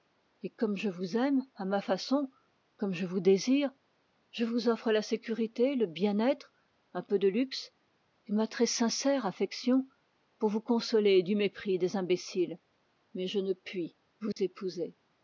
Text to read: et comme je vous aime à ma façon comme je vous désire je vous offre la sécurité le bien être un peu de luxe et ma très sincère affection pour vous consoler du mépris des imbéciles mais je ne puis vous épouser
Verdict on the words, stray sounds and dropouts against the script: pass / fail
fail